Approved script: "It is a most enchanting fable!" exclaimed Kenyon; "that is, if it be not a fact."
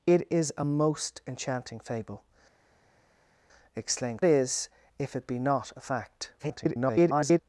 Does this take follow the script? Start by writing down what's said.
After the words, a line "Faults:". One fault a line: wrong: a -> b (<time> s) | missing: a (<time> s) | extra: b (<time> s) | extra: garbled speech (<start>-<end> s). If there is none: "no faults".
"It is a most enchanting fable!" exclaimed Is, if it be not a fact." [garbled]
Faults:
missing: Kenyon that (4.2 s)
extra: garbled speech (6.4-7.4 s)